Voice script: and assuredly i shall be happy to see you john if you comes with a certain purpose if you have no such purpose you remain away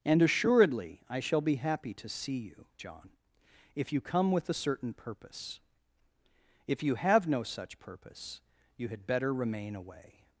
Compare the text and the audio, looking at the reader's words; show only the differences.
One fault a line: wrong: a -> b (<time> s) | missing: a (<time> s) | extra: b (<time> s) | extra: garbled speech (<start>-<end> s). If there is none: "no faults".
wrong: comes -> come (4.0 s)
extra: had better (8.9 s)